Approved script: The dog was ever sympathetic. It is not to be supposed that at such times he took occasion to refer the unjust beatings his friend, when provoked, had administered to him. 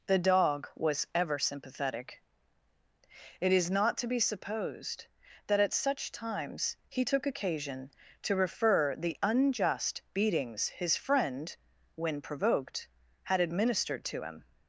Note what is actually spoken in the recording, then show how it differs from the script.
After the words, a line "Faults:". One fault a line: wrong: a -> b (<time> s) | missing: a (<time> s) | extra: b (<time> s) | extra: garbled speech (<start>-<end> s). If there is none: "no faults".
The dog was ever sympathetic. It is not to be supposed that at such times he took occasion to refer the unjust beatings his friend, when provoked, had administered to him.
Faults:
no faults